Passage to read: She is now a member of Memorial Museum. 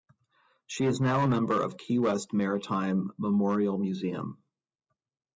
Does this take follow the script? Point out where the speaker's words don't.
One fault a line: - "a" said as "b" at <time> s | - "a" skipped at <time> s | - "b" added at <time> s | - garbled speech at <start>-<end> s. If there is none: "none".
- "Key West Maritime" added at 1.8 s